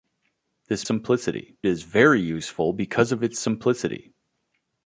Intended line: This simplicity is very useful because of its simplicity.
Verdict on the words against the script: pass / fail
pass